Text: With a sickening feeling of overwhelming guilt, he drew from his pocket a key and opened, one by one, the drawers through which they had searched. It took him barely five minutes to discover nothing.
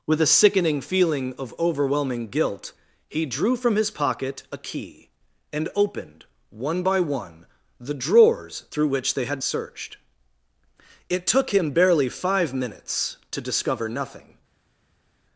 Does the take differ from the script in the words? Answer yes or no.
no